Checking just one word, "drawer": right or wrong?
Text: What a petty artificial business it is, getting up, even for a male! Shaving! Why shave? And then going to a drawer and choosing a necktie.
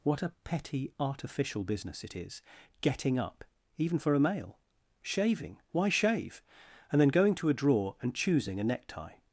right